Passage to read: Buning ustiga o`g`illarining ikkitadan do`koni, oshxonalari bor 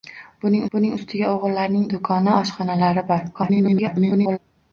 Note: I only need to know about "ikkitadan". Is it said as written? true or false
false